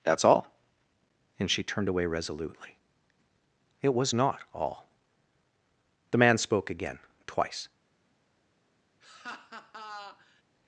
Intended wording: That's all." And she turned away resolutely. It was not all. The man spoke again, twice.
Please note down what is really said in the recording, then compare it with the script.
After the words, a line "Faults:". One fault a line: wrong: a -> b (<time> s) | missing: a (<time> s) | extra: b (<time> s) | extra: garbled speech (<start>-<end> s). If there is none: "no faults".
That's all." And she turned away resolutely. It was not all. The man spoke again, twice.
Faults:
no faults